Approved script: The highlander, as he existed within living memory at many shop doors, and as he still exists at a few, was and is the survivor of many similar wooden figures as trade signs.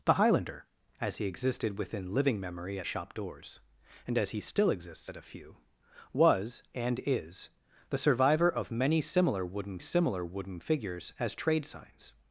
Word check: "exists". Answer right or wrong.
right